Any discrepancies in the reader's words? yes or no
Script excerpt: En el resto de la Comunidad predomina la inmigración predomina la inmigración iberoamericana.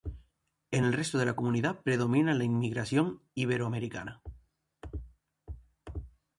yes